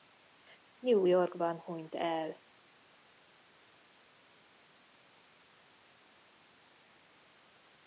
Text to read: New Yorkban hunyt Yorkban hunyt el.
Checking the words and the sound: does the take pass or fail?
fail